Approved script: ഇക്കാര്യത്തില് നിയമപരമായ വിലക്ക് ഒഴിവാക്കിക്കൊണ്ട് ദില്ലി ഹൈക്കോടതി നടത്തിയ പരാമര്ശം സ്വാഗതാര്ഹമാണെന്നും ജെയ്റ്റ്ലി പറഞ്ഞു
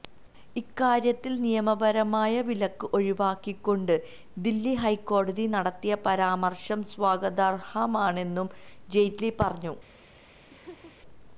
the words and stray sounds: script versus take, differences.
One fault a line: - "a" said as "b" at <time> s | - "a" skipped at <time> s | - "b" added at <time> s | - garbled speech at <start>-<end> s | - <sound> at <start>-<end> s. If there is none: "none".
- laugh at 10.5-11.0 s